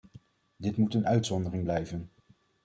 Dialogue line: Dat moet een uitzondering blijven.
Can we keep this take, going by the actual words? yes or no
no